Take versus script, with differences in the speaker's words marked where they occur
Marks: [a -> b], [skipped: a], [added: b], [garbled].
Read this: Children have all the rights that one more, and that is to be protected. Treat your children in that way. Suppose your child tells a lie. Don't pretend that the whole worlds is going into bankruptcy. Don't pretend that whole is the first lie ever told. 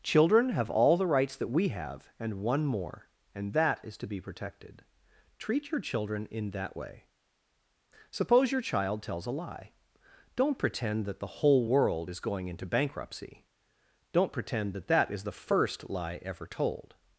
Children have all the rights that [added: we have and] one more, and that is to be protected. Treat your children in that way. Suppose your child tells a lie. Don't pretend that the whole [worlds -> world] is going into bankruptcy. Don't pretend that [whole -> that] is the first lie ever told.